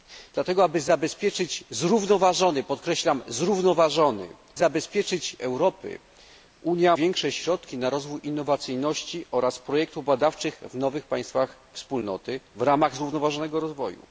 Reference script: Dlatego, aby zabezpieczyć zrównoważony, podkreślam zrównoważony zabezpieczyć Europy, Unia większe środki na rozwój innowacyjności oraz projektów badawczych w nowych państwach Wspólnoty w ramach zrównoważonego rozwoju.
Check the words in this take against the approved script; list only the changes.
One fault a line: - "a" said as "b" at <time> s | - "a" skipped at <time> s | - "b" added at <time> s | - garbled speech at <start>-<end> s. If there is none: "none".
none